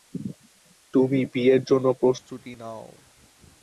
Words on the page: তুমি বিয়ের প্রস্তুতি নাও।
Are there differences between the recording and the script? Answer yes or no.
yes